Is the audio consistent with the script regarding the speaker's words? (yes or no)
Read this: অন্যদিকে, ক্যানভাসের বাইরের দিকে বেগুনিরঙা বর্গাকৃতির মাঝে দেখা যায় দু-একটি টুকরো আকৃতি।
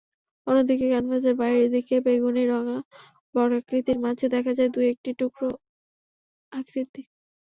yes